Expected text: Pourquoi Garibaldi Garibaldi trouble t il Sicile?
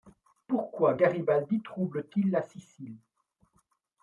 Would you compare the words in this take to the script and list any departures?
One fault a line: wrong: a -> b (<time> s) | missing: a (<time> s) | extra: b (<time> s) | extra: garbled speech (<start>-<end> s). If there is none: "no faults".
missing: Garibaldi (1.6 s)
extra: la (2.3 s)